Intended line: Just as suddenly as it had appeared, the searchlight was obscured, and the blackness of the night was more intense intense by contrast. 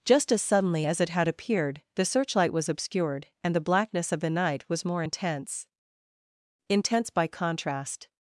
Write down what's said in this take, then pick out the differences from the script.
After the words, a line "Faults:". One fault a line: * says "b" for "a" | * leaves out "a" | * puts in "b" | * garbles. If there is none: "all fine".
Just as suddenly as it had appeared, the searchlight was obscured, and the blackness of the night was more intense intense by contrast.
Faults:
all fine